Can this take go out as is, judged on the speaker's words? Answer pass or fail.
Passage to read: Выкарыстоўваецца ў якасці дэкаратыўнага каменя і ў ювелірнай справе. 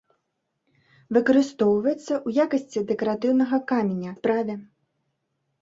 fail